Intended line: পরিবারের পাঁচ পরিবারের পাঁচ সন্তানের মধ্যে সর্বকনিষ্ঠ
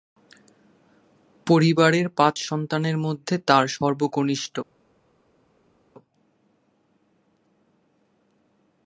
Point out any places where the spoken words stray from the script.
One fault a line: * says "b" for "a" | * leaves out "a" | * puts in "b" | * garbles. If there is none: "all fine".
* leaves out "পরিবারের পাঁচ"
* puts in "তার"